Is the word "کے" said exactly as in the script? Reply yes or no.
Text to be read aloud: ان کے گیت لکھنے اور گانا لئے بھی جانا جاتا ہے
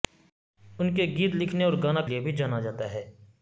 yes